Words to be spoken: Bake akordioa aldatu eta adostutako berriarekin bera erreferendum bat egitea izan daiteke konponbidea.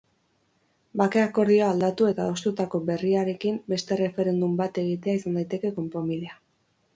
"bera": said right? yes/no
no